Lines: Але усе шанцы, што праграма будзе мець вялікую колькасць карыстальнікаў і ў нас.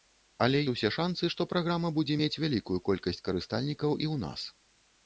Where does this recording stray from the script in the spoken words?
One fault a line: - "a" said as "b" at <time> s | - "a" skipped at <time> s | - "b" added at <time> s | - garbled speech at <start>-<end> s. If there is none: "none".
none